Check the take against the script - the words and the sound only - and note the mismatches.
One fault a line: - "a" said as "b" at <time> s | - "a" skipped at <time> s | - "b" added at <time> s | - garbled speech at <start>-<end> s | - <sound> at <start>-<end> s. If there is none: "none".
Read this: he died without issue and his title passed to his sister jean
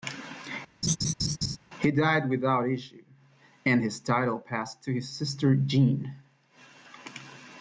- laugh at 0.8-1.6 s